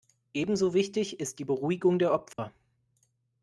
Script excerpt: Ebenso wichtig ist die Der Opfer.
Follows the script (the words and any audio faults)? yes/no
no